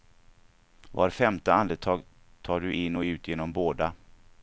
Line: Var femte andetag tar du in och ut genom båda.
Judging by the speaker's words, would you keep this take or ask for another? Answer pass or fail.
pass